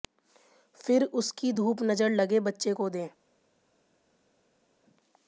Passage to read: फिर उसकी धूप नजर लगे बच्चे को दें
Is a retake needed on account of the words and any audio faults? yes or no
no